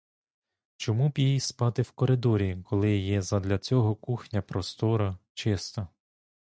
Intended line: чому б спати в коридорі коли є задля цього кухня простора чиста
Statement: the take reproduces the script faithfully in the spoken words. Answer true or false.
false